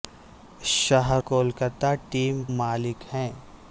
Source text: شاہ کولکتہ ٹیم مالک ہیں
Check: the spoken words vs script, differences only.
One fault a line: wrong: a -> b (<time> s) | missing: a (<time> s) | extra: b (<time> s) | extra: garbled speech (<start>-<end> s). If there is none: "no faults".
no faults